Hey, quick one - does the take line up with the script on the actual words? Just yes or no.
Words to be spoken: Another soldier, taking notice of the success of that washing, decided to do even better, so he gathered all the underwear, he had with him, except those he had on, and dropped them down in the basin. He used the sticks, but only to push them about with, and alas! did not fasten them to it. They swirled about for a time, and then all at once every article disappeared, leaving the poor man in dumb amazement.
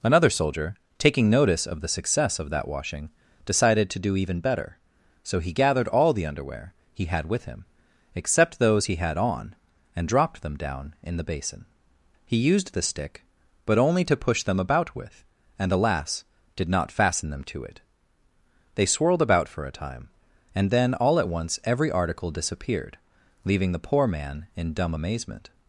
no